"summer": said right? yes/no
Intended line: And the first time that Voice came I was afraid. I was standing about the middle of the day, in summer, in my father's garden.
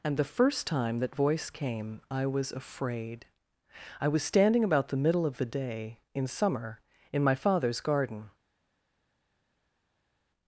yes